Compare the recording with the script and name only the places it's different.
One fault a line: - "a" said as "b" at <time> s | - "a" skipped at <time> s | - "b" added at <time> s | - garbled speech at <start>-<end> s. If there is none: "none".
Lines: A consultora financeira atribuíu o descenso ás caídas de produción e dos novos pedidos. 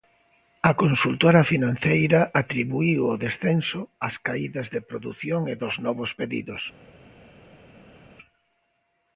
none